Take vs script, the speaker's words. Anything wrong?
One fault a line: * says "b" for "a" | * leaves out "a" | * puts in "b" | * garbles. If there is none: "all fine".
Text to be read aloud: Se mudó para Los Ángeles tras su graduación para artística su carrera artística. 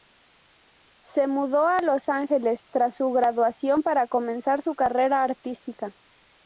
* says "a" for "para"
* says "comenzar" for "artística"